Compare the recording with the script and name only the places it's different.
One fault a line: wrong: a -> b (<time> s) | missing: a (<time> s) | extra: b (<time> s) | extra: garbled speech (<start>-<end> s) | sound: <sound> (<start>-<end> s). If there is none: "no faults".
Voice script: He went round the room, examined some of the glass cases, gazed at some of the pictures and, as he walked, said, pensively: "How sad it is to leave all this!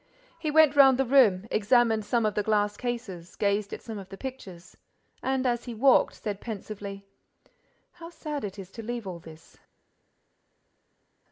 no faults